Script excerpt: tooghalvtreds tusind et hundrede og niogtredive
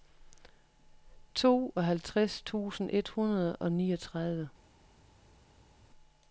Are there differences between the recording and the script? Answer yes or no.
no